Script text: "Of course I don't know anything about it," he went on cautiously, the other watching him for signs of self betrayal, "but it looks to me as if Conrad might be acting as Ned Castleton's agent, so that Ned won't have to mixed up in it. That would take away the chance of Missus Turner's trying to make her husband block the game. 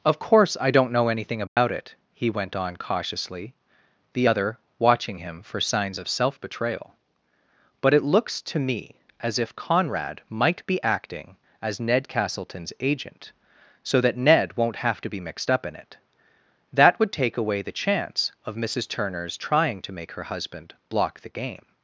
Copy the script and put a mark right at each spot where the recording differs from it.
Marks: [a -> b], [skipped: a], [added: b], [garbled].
"Of course I don't know anything about it," he went on cautiously, the other watching him for signs of self betrayal, "but it looks to me as if Conrad might be acting as Ned Castleton's agent, so that Ned won't have to [added: be] mixed up in it. That would take away the chance of Missus Turner's trying to make her husband block the game.